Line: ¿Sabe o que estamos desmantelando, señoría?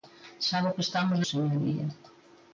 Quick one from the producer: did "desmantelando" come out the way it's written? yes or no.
no